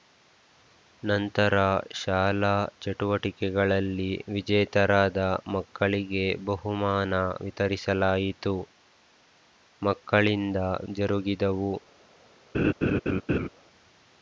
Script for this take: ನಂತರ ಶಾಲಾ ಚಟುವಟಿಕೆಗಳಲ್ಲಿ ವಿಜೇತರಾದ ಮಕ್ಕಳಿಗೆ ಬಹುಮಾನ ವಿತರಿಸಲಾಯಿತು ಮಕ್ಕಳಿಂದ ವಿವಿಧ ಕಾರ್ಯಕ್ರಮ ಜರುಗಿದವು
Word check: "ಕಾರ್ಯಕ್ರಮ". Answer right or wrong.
wrong